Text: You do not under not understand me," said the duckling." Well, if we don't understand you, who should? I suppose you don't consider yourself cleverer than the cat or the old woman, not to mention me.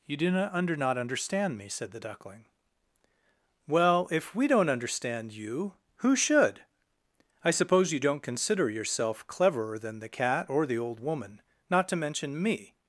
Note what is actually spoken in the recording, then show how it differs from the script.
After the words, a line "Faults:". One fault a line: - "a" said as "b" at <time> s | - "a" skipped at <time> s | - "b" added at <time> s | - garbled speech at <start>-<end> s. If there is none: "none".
You do not under not understand me," said the duckling." Well, if we don't understand you, who should? I suppose you don't consider yourself cleverer than the cat or the old woman, not to mention me.
Faults:
none